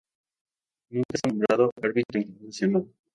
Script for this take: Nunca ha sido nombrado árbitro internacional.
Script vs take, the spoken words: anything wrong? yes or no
yes